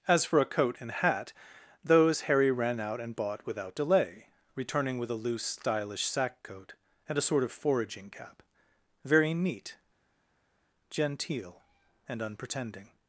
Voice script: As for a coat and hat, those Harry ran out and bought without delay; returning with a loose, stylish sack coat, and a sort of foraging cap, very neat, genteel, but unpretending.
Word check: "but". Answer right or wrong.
wrong